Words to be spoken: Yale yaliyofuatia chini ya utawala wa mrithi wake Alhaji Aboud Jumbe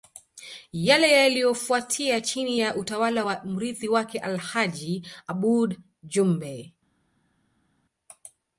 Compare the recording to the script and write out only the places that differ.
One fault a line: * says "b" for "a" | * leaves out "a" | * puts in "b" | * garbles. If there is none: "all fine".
all fine